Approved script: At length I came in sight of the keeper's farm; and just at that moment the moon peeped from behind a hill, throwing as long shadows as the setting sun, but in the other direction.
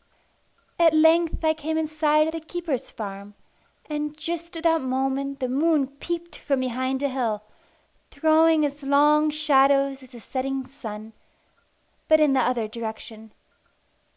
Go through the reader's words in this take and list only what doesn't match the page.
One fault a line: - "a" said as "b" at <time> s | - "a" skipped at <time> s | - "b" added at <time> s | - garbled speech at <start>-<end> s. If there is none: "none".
none